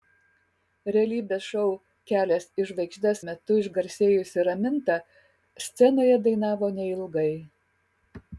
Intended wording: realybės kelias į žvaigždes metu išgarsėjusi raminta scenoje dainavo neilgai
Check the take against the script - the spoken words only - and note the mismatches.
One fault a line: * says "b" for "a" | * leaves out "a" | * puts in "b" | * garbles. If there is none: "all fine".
* puts in "šou"